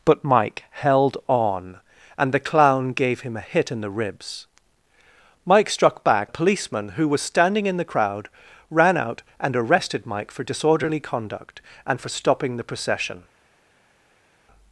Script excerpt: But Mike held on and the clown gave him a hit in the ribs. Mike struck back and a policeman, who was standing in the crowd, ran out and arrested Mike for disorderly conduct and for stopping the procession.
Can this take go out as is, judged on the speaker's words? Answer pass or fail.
fail